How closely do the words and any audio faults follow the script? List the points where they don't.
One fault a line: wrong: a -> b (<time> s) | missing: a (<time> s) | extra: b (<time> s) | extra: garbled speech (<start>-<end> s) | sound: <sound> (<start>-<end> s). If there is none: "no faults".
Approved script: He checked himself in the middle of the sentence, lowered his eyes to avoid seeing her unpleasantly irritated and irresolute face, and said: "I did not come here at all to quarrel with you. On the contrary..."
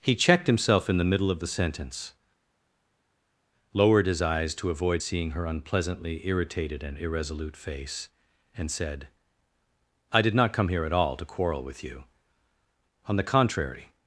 no faults